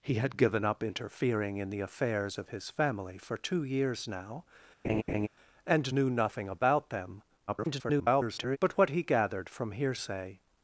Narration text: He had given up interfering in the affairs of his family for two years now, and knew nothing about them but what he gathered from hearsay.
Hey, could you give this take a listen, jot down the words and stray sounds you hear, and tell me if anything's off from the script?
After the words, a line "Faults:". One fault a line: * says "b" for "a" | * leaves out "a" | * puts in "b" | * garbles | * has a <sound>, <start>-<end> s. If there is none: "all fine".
He had given up interfering in the affairs of his family for two years now, and knew nothing about them [garbled] but what he gathered from hearsay.
Faults:
* has a laugh, 4.8-5.3 s
* garbles